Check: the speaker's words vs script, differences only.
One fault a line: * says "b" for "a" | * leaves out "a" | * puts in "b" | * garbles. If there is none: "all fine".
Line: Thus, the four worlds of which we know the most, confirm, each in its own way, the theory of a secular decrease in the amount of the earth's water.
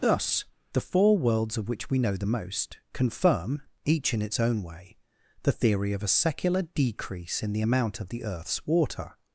all fine